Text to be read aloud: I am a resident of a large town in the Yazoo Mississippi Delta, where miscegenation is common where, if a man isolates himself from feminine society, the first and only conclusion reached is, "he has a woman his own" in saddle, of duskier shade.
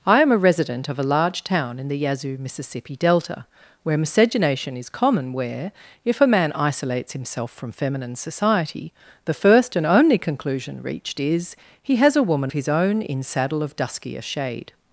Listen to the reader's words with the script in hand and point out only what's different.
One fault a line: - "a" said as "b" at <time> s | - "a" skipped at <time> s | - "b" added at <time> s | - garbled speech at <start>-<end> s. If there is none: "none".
none